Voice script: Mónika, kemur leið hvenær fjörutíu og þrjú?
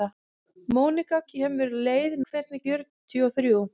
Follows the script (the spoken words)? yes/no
yes